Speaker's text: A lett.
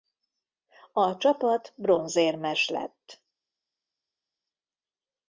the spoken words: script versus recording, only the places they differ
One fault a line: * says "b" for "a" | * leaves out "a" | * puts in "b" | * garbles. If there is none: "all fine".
* puts in "csapat bronzérmes"